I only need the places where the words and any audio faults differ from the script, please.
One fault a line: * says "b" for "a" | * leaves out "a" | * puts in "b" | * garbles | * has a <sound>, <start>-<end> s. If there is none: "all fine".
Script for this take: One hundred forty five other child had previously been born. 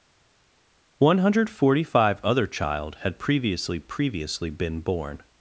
* puts in "previously"